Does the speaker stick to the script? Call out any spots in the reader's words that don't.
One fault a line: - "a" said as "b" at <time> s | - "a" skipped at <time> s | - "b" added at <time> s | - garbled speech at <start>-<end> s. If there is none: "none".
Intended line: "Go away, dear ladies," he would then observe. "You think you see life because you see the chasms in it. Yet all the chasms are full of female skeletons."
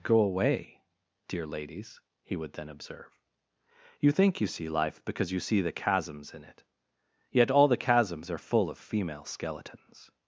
none